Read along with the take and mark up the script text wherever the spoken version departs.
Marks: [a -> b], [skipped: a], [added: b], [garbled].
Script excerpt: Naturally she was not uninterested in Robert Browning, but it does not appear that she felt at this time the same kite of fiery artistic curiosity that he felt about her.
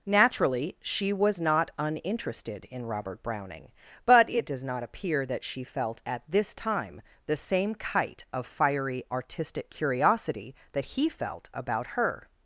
Naturally she was not uninterested in Robert Browning, but it does not appear that she felt at this time the same kite of fiery artistic curiosity that he felt about her.